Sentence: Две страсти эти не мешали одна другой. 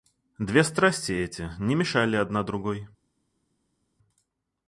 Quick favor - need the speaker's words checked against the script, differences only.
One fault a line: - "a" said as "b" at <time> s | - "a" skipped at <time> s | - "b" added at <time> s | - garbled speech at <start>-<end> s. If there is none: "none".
none